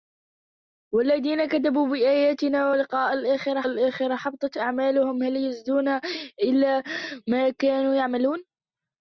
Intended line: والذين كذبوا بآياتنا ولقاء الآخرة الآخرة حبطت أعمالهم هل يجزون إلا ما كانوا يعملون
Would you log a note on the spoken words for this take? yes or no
no